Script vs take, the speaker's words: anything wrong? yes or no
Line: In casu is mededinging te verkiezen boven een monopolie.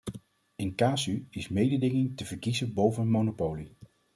no